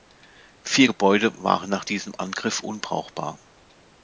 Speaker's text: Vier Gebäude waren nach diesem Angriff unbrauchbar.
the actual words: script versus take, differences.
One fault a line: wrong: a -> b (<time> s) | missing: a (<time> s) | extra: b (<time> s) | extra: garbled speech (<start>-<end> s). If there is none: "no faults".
no faults